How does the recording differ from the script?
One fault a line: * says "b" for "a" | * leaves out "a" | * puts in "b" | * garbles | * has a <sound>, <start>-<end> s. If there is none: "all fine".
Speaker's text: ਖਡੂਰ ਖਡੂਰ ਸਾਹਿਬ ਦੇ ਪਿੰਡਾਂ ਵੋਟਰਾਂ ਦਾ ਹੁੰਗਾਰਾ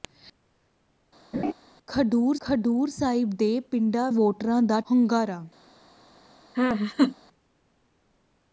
* has a laugh, 1.3-1.5 s
* has a laugh, 6.5-7.2 s